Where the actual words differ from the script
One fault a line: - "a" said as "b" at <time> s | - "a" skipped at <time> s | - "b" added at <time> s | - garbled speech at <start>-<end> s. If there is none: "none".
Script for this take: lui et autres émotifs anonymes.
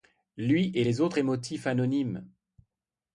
- "les" added at 0.8 s